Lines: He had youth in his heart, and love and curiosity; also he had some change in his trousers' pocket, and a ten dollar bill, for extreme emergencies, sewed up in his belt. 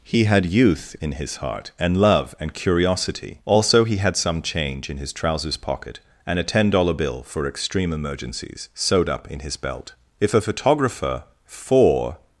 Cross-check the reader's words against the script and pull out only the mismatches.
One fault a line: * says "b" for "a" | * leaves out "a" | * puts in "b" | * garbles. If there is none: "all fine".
* puts in "If a photographer for"